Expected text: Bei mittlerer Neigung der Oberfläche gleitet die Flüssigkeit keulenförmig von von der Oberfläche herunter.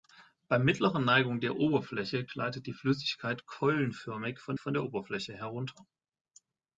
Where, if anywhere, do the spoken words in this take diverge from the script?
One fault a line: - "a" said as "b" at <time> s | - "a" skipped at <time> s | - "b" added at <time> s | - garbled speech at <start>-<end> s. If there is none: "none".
none